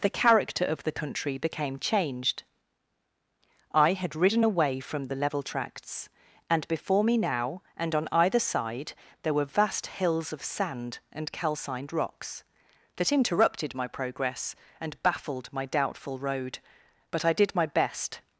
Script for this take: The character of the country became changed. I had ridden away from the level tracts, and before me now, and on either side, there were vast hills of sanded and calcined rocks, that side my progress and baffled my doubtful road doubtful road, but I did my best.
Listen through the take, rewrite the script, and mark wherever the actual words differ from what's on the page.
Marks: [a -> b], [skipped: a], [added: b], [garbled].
The character of the country became changed. I had ridden away from the level tracts, and before me now, and on either side, there were vast hills of [sanded -> sand] and calcined rocks, that [side -> interrupted] my progress and baffled my doubtful road [skipped: doubtful road,] but I did my best.